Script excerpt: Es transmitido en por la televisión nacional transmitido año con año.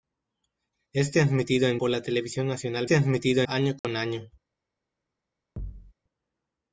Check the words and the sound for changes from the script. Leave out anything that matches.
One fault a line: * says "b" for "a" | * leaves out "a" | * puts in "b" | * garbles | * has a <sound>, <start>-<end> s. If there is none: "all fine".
* has a dropout, 3.8-3.8 s
* has a thud, 5.6-5.9 s